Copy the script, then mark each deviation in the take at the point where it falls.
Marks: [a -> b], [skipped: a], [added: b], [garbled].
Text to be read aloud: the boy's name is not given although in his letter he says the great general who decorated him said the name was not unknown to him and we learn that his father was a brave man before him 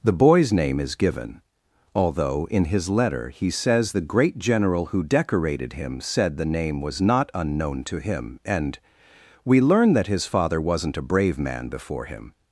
the boy's name is [skipped: not] given although in his letter he says the great general who decorated him said the name was not unknown to him and we learn that his father [was -> wasn't] a brave man before him